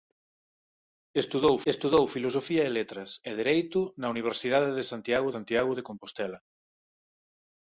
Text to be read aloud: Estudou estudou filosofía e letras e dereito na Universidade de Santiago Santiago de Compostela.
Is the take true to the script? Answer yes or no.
yes